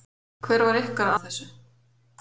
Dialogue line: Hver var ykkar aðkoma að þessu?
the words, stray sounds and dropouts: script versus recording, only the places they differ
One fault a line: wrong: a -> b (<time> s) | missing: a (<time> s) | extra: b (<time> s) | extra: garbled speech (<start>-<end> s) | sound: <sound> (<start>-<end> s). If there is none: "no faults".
missing: aðkoma (1.1 s)